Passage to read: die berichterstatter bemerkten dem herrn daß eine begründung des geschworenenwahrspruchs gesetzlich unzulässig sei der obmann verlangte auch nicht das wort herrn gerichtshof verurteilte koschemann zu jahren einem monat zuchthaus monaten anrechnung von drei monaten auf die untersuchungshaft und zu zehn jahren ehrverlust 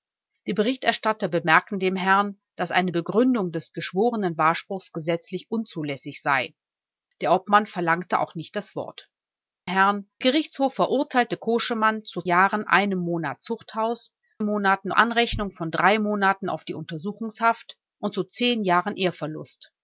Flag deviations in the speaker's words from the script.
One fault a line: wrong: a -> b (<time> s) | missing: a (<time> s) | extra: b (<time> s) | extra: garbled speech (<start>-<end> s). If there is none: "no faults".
no faults